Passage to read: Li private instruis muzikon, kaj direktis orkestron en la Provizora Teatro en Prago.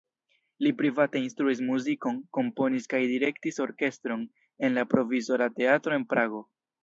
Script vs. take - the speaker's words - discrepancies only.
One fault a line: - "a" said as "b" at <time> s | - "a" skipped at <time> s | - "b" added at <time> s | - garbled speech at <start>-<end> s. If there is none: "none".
- "komponis" added at 2.4 s